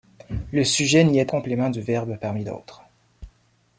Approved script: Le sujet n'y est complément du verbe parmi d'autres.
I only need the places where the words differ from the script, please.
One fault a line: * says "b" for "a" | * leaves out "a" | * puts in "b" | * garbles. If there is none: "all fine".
all fine